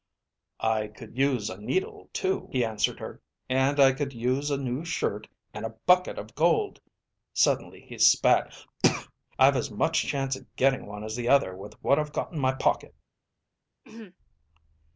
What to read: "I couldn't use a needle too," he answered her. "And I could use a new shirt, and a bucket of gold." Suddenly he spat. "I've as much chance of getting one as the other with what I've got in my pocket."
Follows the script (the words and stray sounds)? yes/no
no